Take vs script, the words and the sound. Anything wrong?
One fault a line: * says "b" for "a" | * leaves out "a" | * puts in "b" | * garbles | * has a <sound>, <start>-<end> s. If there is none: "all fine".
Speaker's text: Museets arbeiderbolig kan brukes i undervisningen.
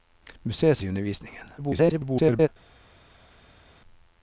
* leaves out "arbeiderbolig kan brukes"
* garbles